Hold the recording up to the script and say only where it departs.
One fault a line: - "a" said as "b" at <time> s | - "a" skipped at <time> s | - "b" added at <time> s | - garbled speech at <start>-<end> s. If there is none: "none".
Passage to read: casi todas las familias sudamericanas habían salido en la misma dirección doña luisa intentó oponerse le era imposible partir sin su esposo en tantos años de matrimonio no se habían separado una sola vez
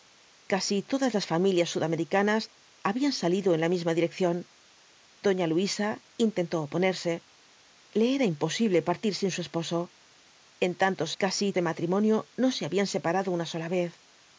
- "años" said as "casi" at 11.2 s